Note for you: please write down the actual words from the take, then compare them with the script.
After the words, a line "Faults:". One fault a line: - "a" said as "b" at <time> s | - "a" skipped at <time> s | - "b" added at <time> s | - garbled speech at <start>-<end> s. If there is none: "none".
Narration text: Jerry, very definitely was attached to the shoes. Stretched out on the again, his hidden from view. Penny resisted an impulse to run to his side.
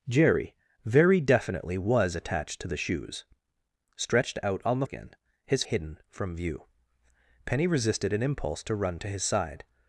Jerry, very definitely was attached to the shoes. Stretched out on the again, his hidden from view. Penny resisted an impulse to run to his side.
Faults:
none